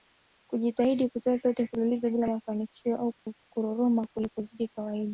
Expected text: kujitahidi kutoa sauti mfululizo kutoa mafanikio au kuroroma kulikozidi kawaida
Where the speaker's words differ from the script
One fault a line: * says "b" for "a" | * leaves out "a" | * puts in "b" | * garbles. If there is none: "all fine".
* says "bila" for "kutoa"